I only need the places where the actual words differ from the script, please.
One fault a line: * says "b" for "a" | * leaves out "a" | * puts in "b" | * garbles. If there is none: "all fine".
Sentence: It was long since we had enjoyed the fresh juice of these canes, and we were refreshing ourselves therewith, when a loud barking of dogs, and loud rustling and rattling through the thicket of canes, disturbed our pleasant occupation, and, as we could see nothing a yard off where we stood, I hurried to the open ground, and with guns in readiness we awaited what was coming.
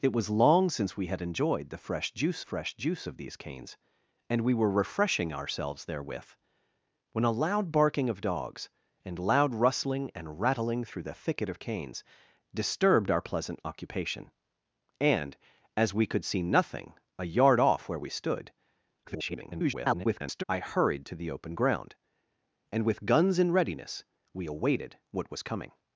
* puts in "fresh juice"
* garbles